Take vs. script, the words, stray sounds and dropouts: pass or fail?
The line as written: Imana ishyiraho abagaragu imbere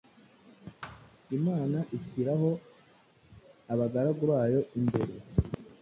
fail